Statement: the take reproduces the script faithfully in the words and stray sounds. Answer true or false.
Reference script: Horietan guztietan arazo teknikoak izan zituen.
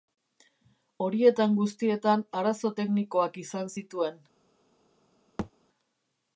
false